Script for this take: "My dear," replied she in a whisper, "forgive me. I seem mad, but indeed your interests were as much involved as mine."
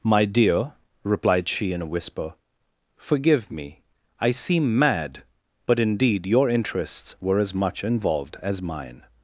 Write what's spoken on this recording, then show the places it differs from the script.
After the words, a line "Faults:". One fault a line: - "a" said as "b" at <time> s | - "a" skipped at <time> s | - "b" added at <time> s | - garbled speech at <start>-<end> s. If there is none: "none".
"My dear," replied she in a whisper, "forgive me. I seem mad, but indeed your interests were as much involved as mine."
Faults:
none